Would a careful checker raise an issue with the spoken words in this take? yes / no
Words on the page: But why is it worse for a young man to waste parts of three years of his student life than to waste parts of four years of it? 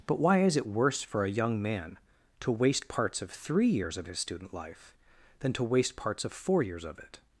no